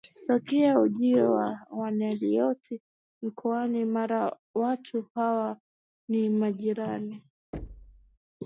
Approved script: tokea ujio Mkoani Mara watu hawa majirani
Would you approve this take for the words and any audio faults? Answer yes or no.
no